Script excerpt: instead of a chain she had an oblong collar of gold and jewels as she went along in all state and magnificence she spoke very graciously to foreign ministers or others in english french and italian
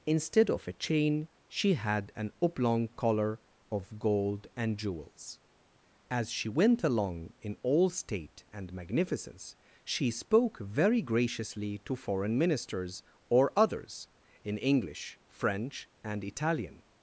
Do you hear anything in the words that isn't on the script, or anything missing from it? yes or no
no